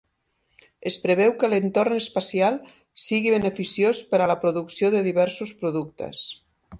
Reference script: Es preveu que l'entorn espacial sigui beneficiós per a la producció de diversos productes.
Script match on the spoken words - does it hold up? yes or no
yes